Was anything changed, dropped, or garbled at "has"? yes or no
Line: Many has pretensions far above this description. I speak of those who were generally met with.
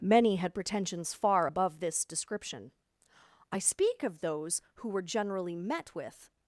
yes